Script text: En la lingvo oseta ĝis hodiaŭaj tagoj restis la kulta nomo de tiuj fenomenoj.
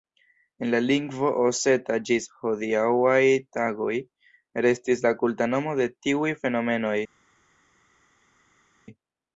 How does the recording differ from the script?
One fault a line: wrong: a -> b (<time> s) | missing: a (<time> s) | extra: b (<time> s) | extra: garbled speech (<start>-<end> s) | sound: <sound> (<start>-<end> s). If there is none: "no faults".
no faults